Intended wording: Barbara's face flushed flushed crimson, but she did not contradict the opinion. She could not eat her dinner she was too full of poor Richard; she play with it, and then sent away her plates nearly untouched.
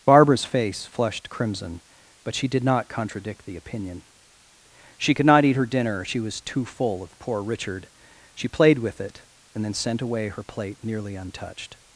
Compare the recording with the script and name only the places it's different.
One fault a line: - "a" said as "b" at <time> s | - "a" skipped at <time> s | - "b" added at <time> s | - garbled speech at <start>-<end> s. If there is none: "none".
- "flushed" skipped at 1.3 s
- "play" said as "played" at 8.5 s
- "plates" said as "plate" at 10.4 s